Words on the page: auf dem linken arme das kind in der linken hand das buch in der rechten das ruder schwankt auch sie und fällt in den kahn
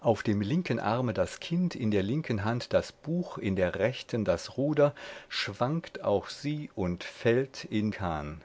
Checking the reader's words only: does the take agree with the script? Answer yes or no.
no